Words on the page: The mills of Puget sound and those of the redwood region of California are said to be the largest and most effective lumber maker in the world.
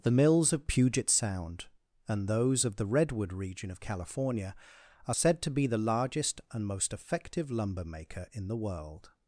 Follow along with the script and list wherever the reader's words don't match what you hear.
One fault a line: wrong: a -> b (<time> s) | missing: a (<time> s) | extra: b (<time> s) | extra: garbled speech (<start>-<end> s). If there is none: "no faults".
no faults